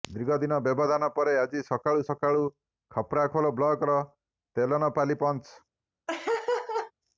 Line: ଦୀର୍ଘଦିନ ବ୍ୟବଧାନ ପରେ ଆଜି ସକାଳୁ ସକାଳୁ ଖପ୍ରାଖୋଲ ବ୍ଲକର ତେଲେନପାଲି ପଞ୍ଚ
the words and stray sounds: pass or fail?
fail